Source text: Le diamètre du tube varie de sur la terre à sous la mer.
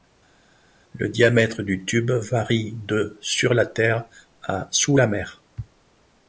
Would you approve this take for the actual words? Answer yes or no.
yes